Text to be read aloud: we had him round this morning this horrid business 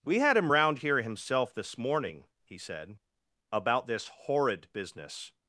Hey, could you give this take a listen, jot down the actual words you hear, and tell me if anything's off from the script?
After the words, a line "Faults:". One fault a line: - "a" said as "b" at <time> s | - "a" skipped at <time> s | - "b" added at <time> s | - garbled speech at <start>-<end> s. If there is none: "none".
we had him round here himself this morning he said about this horrid business
Faults:
- "here himself" added at 0.8 s
- "he said about" added at 2.4 s